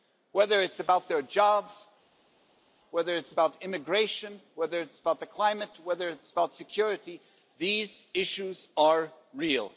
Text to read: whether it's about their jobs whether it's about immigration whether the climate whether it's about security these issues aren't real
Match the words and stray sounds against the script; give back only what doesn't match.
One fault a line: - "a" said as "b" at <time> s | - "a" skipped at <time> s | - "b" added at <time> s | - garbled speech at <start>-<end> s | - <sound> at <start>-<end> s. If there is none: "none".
- "it's about" added at 4.8 s
- "aren't" said as "are" at 8.8 s